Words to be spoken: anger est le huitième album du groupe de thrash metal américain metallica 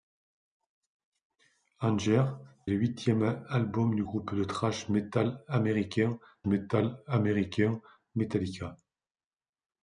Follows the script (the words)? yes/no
no